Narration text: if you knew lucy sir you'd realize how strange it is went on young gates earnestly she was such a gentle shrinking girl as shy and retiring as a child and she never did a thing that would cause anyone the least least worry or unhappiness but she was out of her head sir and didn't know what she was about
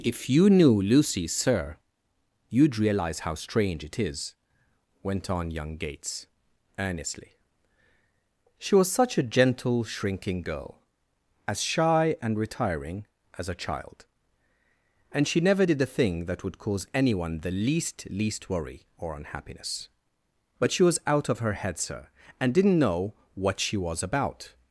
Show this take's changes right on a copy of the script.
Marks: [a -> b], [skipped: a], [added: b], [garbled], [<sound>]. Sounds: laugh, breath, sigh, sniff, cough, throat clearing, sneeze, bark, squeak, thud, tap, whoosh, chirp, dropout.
if you knew lucy sir you'd realize how strange it is went on young gates earnestly she was such a gentle shrinking girl as shy and retiring as a child and she never did a thing that would cause anyone the least least worry or unhappiness but she was out of her head sir and didn't know what she was about